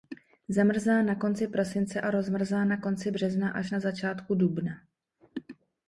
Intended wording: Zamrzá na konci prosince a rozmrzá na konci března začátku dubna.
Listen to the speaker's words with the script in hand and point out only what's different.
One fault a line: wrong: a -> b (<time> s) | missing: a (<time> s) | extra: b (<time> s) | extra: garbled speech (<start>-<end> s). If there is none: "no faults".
extra: až na (3.5 s)